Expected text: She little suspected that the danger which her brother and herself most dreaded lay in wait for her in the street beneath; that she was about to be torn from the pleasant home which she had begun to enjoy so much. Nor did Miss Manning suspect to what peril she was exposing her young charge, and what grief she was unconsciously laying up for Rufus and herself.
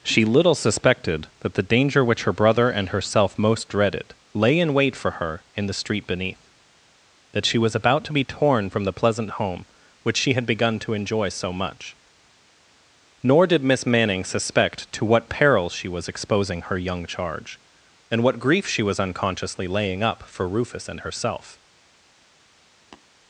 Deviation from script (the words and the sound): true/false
true